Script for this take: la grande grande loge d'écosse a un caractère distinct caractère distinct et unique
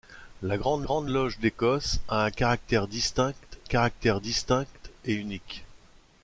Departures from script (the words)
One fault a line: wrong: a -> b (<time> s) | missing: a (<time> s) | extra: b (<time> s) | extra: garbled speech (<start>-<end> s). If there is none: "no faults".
no faults